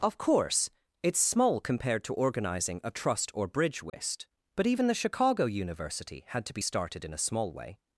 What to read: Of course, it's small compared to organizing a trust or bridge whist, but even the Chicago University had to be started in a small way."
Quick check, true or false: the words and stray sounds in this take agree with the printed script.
false